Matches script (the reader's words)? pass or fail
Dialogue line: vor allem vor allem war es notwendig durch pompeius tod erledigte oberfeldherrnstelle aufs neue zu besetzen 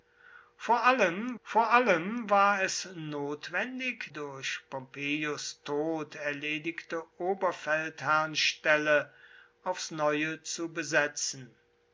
pass